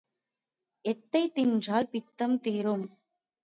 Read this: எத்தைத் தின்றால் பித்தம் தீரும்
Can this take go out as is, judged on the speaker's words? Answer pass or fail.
pass